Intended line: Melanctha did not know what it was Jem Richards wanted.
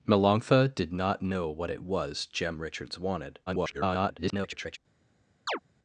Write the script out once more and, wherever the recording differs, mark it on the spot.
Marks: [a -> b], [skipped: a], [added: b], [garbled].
Melanctha did not know what it was Jem Richards wanted. [garbled]